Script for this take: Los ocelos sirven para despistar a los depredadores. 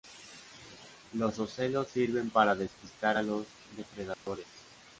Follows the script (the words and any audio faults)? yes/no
no